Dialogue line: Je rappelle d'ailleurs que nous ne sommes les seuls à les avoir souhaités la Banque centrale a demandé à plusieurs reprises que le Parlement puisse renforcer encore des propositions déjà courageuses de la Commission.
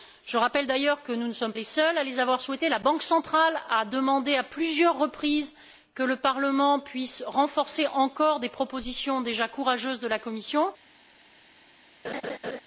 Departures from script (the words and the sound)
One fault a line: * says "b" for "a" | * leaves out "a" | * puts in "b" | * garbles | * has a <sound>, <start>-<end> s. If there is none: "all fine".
* has a laugh, 12.0-12.6 s